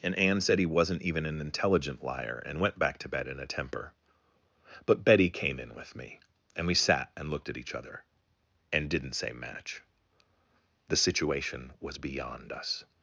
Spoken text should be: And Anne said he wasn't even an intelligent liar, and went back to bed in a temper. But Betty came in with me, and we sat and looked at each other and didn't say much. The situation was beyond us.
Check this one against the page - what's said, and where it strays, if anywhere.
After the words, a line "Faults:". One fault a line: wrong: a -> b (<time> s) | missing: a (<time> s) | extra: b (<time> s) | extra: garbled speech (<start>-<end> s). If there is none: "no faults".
And Anne said he wasn't even an intelligent liar, and went back to bed in a temper. But Betty came in with me, and we sat and looked at each other and didn't say match. The situation was beyond us.
Faults:
wrong: much -> match (9.3 s)